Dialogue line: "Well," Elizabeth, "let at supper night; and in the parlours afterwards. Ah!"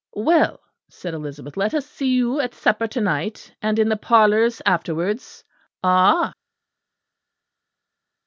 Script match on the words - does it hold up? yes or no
no